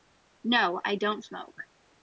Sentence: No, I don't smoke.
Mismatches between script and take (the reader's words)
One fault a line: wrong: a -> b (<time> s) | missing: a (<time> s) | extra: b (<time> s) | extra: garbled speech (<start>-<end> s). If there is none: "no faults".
no faults